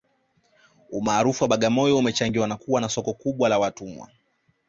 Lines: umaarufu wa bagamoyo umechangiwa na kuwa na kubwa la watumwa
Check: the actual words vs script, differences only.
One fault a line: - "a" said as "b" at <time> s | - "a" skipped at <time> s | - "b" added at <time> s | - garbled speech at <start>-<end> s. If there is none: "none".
- "soko" added at 2.9 s